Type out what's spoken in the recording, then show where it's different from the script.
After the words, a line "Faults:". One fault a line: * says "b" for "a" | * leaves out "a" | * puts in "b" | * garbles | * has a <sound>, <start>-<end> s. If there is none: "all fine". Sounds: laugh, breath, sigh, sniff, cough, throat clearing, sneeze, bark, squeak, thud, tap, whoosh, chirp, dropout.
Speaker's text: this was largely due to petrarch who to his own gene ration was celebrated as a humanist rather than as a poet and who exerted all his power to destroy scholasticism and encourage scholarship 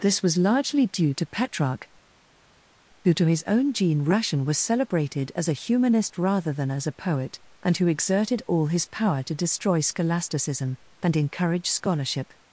this was largely due to petrarch who to his own gene ration was celebrated as a humanist rather than as a poet and who exerted all his power to destroy scholasticism and encourage scholarship
Faults:
all fine